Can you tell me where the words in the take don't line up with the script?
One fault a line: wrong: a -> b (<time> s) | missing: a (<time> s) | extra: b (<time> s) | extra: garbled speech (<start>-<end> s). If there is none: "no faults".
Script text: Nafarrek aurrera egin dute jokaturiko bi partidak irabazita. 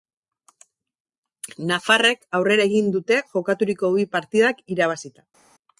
no faults